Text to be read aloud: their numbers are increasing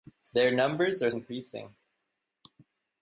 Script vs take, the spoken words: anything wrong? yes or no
no